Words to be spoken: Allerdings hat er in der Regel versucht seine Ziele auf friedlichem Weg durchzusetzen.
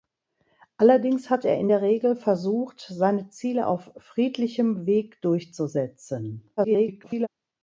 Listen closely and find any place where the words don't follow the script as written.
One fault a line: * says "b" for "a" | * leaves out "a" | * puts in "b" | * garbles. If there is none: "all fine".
* garbles